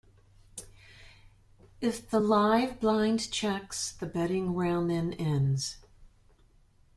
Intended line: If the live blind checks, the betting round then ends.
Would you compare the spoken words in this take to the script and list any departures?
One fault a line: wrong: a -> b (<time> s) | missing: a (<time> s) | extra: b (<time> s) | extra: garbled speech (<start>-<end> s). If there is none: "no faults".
no faults